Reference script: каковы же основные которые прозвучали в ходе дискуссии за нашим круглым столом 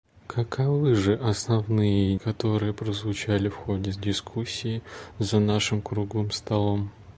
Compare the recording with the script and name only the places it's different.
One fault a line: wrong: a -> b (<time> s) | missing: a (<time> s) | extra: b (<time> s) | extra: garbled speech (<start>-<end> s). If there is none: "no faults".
no faults